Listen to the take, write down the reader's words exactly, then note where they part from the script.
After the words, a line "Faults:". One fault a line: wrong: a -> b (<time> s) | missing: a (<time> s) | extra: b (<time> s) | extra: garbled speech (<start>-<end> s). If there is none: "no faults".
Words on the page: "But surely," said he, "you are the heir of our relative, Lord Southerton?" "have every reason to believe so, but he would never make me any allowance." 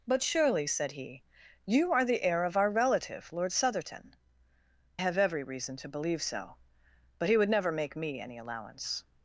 "But surely," said he, "you are the heir of our relative, Lord Southerton?" "have every reason to believe so, but he would never make me any allowance."
Faults:
no faults